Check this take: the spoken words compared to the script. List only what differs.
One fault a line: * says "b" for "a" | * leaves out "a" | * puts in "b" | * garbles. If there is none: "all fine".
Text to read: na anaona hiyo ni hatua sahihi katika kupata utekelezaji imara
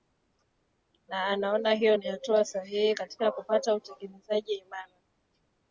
all fine